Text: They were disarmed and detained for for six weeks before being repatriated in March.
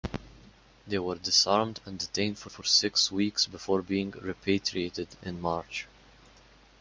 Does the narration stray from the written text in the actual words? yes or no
no